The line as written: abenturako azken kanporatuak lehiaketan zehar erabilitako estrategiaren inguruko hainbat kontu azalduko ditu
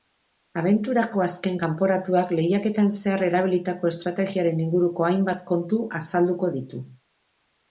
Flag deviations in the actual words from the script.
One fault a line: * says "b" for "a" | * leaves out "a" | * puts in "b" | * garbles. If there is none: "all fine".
all fine